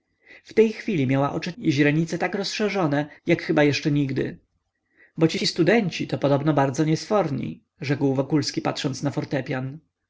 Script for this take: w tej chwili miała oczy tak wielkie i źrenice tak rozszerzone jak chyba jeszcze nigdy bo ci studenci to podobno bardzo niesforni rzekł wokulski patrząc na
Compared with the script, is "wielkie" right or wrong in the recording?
wrong